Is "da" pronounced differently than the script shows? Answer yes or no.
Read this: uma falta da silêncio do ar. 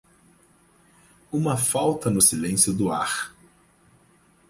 yes